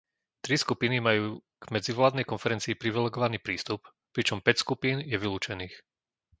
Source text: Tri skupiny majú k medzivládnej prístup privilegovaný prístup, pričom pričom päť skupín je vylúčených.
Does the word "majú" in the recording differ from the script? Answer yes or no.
no